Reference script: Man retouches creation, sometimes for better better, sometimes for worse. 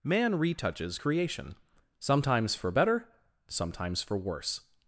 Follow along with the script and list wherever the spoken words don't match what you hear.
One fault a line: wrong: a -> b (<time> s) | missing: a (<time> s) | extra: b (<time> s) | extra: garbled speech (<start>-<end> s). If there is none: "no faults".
missing: better (3.1 s)